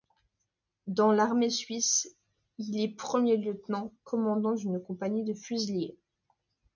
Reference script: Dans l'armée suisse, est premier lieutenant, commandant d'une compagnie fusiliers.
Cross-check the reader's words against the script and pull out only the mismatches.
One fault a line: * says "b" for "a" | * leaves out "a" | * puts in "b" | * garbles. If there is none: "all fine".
* puts in "il"
* puts in "de"